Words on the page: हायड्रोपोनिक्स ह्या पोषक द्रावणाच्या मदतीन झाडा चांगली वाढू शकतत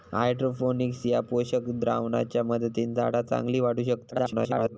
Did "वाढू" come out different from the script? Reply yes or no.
no